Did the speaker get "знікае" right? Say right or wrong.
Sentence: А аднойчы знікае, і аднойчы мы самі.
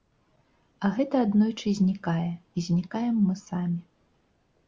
right